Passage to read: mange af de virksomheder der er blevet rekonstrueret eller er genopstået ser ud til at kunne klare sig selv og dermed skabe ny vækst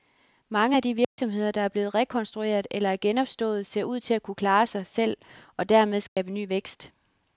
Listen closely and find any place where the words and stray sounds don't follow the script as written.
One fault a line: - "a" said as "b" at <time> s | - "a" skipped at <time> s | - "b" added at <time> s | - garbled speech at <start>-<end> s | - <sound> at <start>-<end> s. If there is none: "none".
- dropout at 1.0-1.2 s
- dropout at 6.1-6.2 s